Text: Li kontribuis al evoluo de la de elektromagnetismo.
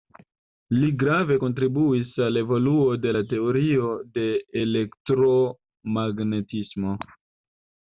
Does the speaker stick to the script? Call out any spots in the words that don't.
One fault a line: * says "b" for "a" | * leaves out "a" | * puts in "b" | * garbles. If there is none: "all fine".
* puts in "grave"
* puts in "teorio"